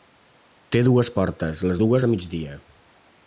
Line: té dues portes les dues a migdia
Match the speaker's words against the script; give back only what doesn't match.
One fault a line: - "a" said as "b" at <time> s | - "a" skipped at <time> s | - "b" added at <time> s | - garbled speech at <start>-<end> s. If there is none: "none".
none